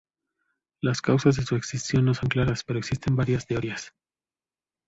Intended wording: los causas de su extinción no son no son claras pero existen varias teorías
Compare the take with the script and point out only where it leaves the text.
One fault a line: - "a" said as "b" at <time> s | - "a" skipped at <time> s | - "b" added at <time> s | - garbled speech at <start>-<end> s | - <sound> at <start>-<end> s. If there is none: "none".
- "los" said as "las" at 0.8 s
- "no son" skipped at 2.3 s